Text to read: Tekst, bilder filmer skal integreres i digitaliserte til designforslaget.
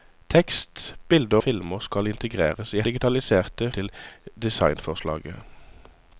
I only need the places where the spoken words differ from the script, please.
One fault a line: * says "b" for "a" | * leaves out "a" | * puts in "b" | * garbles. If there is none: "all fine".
all fine